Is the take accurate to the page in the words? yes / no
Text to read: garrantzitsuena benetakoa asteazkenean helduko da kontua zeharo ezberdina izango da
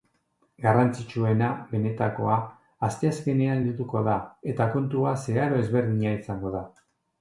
no